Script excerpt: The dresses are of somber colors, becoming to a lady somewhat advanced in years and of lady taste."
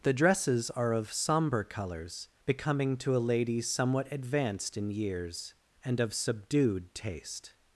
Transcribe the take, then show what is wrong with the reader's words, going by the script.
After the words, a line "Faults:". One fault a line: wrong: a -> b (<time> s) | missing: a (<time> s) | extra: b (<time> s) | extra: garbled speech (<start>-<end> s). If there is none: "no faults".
The dresses are of somber colors, becoming to a lady somewhat advanced in years and of subdued taste."
Faults:
wrong: lady -> subdued (6.2 s)